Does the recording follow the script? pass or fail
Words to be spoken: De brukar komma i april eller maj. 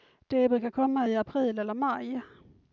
pass